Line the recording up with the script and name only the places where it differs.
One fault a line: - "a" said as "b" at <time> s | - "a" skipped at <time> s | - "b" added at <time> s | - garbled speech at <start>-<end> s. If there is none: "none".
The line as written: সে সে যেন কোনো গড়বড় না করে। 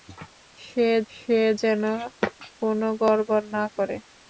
none